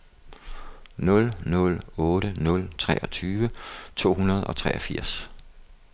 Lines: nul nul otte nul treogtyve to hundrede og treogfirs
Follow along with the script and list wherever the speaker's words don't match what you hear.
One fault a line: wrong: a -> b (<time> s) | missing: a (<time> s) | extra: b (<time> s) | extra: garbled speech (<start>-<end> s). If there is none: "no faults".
no faults